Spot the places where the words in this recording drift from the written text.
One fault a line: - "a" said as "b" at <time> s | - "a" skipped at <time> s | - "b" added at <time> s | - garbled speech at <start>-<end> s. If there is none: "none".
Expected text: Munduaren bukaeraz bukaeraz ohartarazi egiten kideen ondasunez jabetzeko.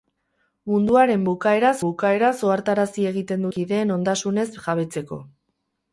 none